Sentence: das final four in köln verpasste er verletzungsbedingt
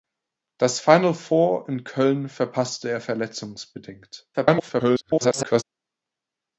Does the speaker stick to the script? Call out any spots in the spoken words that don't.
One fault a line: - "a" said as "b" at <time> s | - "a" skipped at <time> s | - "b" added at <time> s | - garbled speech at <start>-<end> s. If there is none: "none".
- garbled speech at 4.3-5.6 s